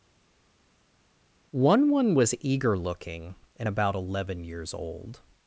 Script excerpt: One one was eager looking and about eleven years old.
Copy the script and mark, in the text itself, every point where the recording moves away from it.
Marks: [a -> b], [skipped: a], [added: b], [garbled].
One one was eager looking and about eleven years old.